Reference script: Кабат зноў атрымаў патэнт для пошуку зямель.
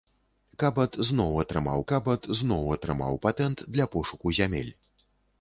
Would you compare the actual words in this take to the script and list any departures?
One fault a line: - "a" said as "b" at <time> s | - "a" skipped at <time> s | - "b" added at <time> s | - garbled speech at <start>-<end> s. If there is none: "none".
- "кабат зноў атрымаў" added at 1.9 s